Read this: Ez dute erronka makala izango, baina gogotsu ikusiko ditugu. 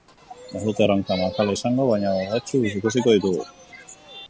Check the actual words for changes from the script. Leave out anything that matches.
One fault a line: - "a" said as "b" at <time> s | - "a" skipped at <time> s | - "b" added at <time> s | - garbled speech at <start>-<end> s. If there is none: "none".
none